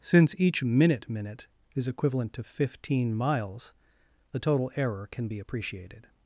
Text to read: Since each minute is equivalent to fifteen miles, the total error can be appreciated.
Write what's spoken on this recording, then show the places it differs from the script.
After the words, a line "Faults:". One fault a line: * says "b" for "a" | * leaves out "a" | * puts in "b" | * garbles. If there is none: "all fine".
Since each minute minute is equivalent to fifteen miles, the total error can be appreciated.
Faults:
* puts in "minute"